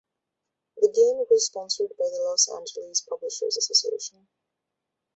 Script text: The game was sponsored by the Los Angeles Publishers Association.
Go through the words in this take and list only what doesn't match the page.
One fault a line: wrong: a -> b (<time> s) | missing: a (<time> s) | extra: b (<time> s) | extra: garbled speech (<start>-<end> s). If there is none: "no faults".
no faults